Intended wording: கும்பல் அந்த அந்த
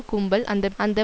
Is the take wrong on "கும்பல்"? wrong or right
right